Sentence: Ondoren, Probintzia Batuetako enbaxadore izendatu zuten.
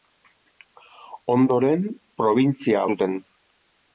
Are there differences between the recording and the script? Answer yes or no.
yes